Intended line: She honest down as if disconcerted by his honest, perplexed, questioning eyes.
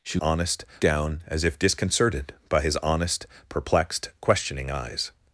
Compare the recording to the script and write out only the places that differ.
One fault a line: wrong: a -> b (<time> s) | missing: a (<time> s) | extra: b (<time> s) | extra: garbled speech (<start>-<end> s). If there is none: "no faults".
no faults